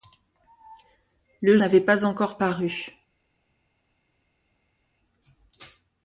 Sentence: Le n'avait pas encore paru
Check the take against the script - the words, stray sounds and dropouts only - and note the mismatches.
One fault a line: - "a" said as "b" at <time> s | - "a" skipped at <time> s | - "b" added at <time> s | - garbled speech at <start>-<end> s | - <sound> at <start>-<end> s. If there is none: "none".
none